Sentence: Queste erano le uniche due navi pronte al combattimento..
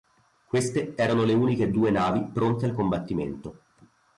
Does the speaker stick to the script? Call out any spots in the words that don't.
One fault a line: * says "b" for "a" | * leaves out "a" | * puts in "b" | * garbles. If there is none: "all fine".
all fine